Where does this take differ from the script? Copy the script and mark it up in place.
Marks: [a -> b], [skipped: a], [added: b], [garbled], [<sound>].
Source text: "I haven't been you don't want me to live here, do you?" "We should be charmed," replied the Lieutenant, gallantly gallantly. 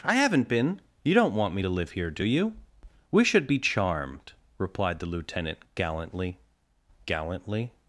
"I haven't been you don't want me to live here, do you?" "We should be charmed," replied the Lieutenant, gallantly gallantly.